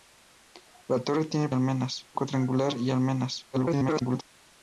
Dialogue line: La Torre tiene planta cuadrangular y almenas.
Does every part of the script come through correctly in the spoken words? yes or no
no